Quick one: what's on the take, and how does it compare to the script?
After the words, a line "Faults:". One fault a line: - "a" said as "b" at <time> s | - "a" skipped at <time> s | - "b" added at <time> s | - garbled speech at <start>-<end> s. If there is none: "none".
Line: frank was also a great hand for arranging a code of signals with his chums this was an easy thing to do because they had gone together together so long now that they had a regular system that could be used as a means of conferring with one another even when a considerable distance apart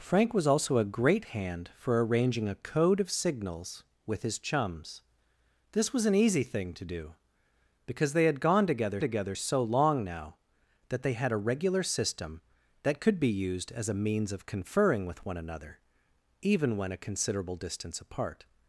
frank was also a great hand for arranging a code of signals with his chums this was an easy thing to do because they had gone together together so long now that they had a regular system that could be used as a means of conferring with one another even when a considerable distance apart
Faults:
none